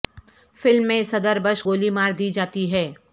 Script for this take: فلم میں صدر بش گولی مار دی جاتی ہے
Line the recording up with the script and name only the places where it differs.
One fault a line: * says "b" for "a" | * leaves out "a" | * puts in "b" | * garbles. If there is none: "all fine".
all fine